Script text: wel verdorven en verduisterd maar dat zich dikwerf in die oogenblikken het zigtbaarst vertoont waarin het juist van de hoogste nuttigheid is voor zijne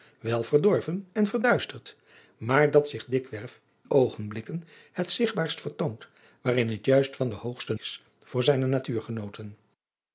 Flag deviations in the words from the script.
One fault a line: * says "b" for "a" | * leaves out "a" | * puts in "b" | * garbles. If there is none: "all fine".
* leaves out "in die"
* leaves out "nuttigheid"